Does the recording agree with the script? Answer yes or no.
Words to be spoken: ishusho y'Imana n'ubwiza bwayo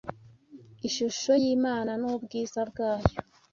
yes